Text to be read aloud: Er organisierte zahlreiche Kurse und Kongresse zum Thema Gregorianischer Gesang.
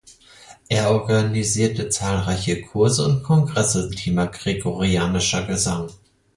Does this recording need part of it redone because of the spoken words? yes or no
yes